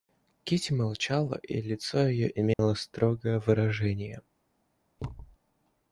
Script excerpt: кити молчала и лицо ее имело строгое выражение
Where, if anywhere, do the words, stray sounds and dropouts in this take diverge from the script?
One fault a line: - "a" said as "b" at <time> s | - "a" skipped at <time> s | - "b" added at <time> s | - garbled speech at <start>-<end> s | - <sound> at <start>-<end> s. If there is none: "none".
- dropout at 2.5-2.6 s
- thud at 5.0-5.4 s